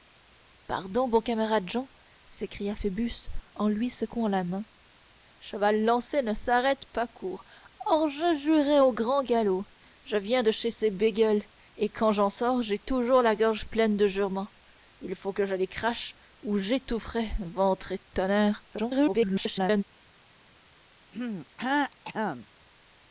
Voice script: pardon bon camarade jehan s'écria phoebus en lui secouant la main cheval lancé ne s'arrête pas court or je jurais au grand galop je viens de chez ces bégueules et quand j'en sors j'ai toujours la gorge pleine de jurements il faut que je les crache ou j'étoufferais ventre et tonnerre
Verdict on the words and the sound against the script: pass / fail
fail